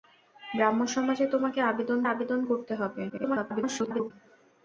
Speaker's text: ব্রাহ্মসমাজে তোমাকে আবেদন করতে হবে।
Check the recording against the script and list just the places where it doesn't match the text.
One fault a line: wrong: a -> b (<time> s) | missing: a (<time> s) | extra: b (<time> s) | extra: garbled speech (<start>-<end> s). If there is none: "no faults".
extra: আবেদন (2.1 s)
extra: garbled speech (3.1-4.1 s)